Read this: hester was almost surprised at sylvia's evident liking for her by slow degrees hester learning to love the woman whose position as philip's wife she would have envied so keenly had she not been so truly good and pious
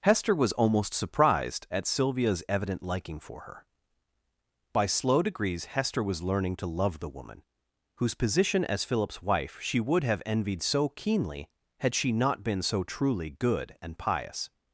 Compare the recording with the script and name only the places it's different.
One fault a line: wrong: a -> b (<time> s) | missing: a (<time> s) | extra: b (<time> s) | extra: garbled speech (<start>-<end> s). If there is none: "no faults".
extra: was (6.0 s)